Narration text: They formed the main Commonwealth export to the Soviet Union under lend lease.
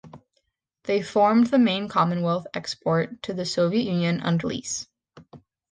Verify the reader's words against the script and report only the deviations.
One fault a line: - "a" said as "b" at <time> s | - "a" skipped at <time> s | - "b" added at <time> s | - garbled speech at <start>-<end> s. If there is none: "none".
- "lend" skipped at 4.5 s